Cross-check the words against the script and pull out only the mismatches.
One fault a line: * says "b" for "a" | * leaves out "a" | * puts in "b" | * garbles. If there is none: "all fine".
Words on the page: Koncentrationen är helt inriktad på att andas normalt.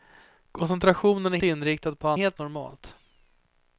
* leaves out "helt"
* says "helt" for "andas"